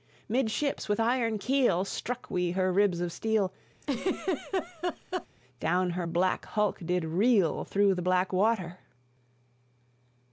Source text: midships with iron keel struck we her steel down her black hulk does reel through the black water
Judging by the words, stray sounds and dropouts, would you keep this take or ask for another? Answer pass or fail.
fail